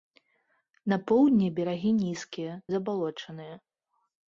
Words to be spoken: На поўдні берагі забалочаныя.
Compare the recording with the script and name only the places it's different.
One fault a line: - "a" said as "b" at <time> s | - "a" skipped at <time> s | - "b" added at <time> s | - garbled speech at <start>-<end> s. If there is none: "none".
- "нізкія" added at 2.0 s